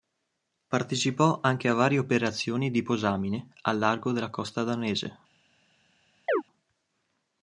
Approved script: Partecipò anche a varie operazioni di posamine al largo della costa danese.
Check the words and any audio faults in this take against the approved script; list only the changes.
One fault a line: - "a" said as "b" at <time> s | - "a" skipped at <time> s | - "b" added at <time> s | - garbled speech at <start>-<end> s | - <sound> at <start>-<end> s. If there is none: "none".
- chirp at 6.3-6.4 s